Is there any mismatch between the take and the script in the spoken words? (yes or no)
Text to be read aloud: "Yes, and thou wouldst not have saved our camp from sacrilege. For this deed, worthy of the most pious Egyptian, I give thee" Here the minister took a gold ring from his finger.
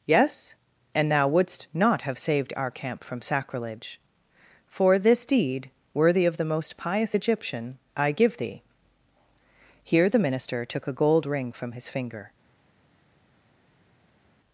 no